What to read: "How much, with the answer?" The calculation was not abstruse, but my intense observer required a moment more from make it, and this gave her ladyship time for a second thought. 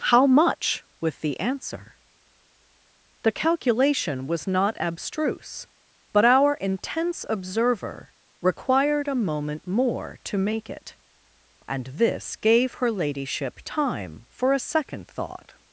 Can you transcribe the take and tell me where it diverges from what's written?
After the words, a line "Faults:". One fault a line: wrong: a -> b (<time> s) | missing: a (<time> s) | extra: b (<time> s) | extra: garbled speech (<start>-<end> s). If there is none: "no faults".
"How much, with the answer?" The calculation was not abstruse, but our intense observer required a moment more to make it, and this gave her ladyship time for a second thought.
Faults:
wrong: my -> our (6.2 s)
wrong: from -> to (10.2 s)